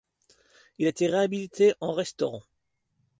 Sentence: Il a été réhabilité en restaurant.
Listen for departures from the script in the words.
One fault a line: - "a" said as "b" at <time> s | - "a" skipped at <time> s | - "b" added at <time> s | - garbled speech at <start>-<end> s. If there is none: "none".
none